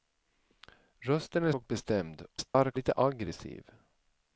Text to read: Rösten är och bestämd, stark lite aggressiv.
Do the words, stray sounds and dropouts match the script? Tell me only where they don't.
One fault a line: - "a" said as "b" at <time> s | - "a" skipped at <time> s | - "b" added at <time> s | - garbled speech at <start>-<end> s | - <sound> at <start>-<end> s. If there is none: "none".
- dropout at 2.5-2.5 s